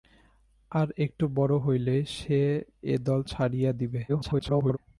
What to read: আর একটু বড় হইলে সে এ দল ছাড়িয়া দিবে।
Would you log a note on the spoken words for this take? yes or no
yes